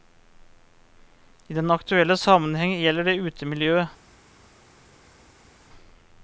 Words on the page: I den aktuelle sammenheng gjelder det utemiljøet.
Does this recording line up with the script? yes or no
yes